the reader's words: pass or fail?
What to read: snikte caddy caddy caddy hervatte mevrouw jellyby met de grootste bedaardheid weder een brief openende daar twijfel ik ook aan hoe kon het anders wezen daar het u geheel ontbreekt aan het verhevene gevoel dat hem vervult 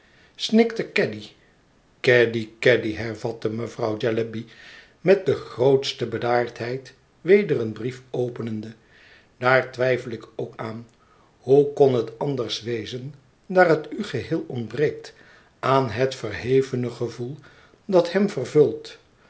pass